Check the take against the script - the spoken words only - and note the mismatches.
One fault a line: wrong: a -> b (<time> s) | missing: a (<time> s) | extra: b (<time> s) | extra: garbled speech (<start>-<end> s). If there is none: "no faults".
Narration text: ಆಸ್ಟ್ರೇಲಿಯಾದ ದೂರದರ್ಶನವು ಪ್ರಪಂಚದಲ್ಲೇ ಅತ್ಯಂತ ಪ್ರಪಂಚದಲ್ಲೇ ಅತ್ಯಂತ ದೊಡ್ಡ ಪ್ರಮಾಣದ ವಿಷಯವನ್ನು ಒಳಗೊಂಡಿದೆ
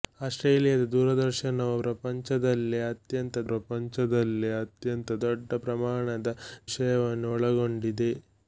no faults